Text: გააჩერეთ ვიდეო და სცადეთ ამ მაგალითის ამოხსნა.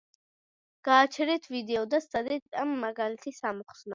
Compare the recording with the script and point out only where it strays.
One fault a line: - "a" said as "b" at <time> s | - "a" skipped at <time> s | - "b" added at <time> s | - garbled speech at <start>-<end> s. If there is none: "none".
none